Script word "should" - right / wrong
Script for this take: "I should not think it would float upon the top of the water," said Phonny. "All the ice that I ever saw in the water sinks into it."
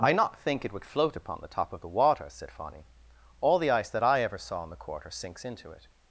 wrong